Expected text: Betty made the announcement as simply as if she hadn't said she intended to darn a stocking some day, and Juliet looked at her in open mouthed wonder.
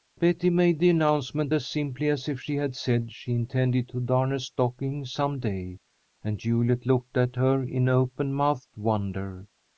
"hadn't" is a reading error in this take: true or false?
true